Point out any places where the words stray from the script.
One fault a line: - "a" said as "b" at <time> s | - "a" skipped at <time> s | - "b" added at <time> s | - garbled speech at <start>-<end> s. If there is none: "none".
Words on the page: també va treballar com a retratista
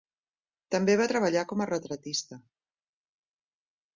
none